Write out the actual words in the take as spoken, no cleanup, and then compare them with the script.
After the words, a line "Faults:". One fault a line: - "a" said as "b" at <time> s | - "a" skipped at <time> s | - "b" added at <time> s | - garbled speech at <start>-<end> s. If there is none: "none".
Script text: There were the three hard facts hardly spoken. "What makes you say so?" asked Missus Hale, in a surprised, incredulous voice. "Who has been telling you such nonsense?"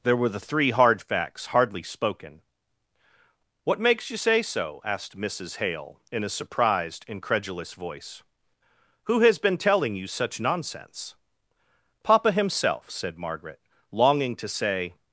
There were the three hard facts hardly spoken. "What makes you say so?" asked Missus Hale, in a surprised, incredulous voice. "Who has been telling you such nonsense?" "Papa himself," said Margaret, longing to say
Faults:
- "Papa himself said Margaret longing to say" added at 12.0 s